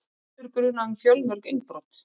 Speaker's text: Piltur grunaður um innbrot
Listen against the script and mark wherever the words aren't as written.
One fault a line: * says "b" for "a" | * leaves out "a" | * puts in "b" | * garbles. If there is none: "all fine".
* puts in "fjölmörg"